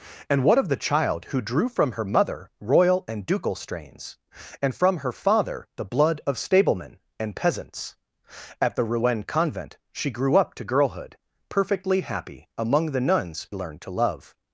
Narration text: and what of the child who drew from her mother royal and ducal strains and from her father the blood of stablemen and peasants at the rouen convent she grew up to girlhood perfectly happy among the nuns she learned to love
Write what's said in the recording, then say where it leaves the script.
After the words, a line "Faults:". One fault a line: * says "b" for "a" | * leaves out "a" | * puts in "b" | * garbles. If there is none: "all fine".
and what of the child who drew from her mother royal and ducal strains and from her father the blood of stablemen and peasants at the rouen convent she grew up to girlhood perfectly happy among the nuns learned to love
Faults:
* leaves out "she"